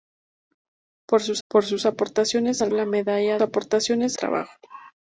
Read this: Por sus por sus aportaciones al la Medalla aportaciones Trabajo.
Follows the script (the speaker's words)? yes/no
yes